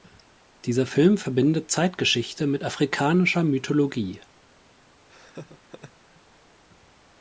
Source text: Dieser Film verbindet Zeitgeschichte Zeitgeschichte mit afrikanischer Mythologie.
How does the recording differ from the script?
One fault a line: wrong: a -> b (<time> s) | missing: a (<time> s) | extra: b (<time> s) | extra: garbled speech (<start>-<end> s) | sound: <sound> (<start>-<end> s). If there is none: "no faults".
missing: Zeitgeschichte (2.5 s)
sound: laugh (5.1-6.2 s)